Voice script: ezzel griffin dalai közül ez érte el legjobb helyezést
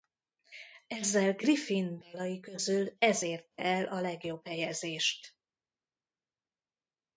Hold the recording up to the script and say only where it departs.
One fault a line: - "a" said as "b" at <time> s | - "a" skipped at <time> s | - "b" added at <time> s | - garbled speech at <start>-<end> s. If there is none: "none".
- "a" added at 3.9 s